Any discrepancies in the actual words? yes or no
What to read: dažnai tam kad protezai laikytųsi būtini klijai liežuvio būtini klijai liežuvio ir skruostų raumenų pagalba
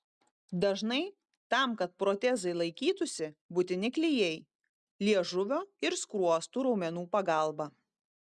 yes